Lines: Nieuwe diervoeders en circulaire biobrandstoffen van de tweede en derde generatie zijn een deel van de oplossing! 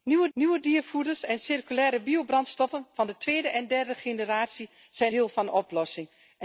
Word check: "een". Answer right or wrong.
wrong